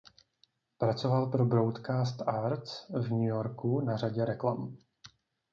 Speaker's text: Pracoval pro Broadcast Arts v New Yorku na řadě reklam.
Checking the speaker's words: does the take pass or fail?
pass